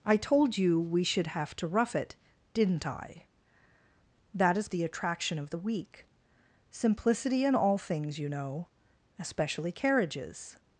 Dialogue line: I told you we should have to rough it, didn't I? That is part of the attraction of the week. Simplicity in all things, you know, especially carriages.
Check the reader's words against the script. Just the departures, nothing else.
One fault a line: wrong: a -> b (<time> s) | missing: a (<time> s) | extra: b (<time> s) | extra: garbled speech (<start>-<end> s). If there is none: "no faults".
missing: part of (4.7 s)